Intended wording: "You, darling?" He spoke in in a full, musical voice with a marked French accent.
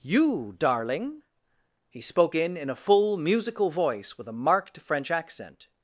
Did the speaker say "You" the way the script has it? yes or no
yes